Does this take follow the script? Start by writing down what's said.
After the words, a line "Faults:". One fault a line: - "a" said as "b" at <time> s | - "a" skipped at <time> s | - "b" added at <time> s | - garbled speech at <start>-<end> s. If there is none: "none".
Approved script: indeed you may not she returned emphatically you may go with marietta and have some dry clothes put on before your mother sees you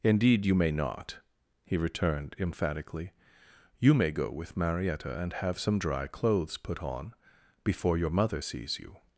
indeed you may not he returned emphatically you may go with marietta and have some dry clothes put on before your mother sees you
Faults:
- "she" said as "he" at 1.6 s